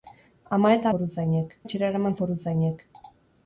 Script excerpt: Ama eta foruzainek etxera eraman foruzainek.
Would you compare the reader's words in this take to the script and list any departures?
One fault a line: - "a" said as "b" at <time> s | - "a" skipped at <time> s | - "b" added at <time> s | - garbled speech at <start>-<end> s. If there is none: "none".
none